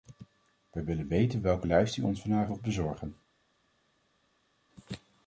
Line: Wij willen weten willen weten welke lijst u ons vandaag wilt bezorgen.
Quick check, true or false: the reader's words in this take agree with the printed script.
false